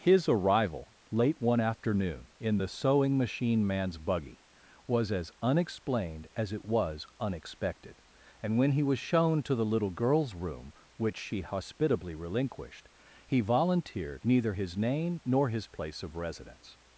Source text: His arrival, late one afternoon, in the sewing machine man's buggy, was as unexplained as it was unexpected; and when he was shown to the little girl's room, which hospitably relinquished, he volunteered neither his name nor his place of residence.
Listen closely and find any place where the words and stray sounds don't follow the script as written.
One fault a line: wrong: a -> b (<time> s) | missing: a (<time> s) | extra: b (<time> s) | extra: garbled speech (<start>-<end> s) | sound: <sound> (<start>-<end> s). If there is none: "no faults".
extra: she (11.2 s)